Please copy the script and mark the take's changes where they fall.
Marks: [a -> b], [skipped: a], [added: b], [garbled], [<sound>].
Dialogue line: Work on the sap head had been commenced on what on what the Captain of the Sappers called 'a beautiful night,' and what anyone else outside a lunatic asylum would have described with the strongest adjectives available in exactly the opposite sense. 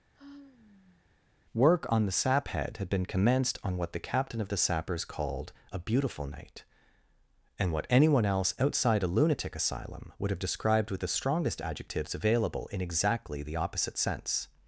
[sigh] Work on the sap head had been commenced on what [skipped: on what] the Captain of the Sappers called 'a beautiful night,' and what anyone else outside a lunatic asylum would have described with the strongest adjectives available in exactly the opposite sense.